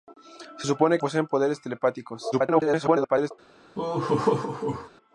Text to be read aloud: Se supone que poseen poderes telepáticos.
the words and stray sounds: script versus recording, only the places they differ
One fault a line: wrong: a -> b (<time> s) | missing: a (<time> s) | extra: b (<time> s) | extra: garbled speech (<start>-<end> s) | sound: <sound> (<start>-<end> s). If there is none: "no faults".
missing: que (1.0 s)
extra: garbled speech (2.3-3.3 s)
sound: laugh (3.7-4.9 s)